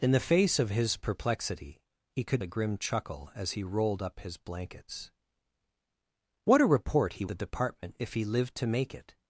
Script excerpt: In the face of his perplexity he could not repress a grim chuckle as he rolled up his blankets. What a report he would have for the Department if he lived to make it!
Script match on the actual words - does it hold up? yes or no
no